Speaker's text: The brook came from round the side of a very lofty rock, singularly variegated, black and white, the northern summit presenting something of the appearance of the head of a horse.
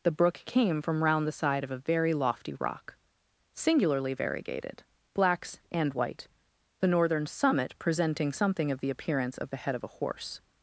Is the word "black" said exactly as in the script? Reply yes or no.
no